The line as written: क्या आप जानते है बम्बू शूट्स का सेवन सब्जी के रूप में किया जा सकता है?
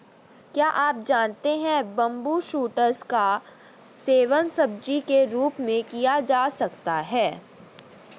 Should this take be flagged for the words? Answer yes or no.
no